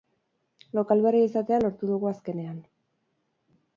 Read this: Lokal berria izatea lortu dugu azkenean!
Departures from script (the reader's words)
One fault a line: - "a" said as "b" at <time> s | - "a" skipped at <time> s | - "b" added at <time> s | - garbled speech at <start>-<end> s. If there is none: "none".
none